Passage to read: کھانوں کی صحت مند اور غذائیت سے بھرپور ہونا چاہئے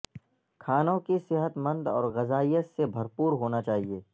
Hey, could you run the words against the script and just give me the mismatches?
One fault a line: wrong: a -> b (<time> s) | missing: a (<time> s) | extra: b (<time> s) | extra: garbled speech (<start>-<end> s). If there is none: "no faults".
no faults